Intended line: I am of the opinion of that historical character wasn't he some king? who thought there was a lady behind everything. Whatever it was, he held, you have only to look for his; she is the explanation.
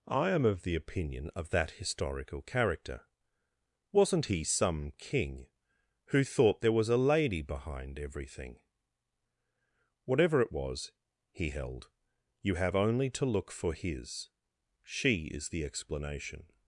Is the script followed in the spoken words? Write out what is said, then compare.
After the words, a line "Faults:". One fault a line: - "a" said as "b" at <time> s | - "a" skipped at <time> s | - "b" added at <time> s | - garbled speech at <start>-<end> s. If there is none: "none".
I am of the opinion of that historical character wasn't he some king? who thought there was a lady behind everything. Whatever it was, he held, you have only to look for his; she is the explanation.
Faults:
none